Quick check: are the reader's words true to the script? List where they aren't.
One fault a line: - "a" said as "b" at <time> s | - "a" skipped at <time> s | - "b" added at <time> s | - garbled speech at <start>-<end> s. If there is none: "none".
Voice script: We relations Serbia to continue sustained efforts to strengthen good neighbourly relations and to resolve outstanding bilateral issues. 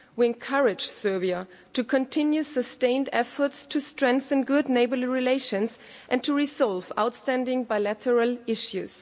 - "relations" said as "encourage" at 0.2 s